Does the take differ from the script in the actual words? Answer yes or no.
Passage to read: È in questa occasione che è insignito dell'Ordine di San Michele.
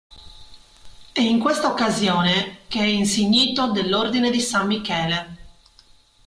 no